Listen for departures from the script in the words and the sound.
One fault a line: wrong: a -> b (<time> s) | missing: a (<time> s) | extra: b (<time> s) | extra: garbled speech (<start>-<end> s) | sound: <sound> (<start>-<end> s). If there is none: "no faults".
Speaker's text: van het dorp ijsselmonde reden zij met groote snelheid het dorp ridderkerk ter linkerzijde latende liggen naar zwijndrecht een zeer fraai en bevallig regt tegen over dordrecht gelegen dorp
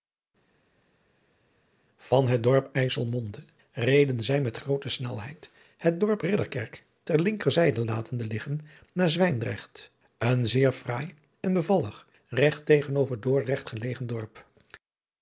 no faults